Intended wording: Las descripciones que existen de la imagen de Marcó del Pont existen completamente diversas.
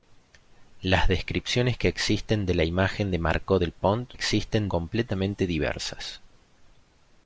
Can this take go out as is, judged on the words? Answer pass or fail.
pass